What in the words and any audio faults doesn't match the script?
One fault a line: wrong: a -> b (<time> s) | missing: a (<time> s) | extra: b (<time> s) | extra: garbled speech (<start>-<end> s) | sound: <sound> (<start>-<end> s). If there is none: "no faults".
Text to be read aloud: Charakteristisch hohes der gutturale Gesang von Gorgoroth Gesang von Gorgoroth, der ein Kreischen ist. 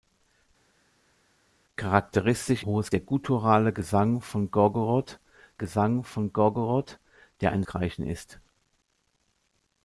no faults